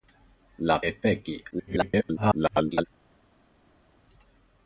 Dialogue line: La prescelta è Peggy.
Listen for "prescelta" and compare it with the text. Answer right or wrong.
wrong